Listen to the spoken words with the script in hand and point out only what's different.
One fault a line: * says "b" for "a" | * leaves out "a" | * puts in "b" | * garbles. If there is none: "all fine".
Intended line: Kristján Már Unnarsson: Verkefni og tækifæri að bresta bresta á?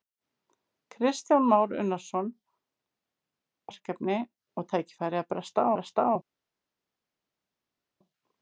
all fine